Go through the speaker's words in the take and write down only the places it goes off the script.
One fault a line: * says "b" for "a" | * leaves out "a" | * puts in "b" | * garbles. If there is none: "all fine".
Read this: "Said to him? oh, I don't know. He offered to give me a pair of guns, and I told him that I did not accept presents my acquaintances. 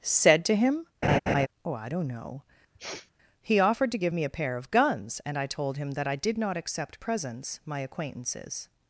all fine